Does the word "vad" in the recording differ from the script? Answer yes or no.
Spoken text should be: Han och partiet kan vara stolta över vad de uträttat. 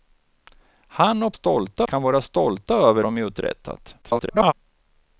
yes